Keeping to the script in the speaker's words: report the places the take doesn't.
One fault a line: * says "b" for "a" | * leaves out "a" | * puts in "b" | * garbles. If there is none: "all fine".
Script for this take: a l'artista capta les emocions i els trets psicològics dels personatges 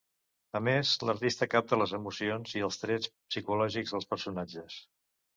* puts in "més"